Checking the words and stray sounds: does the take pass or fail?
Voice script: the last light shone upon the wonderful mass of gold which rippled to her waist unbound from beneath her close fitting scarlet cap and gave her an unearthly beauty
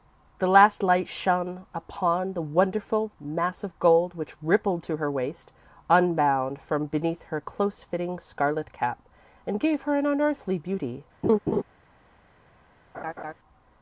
fail